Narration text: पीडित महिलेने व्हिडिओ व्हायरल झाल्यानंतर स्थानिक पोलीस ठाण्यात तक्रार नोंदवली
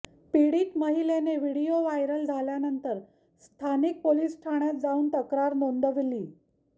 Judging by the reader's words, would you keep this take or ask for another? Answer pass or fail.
fail